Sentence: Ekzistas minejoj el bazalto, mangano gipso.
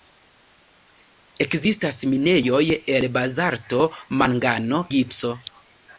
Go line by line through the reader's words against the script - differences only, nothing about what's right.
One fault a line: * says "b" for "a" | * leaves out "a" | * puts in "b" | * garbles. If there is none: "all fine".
all fine